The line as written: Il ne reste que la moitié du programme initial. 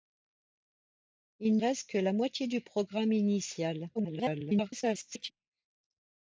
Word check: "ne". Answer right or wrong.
wrong